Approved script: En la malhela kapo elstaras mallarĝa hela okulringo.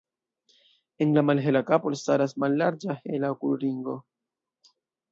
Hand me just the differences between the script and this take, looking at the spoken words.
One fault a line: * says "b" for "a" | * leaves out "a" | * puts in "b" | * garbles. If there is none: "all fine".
all fine